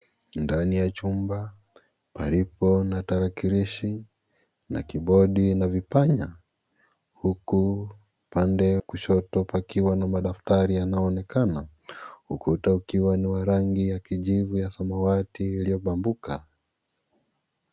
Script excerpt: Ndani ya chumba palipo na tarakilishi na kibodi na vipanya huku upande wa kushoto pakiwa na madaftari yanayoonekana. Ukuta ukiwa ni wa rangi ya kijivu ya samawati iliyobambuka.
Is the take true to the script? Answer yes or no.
no